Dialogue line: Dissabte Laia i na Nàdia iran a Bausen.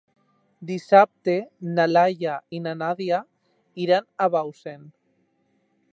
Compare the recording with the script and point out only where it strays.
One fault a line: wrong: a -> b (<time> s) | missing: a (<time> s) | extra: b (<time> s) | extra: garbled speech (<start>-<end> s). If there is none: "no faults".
extra: na (1.8 s)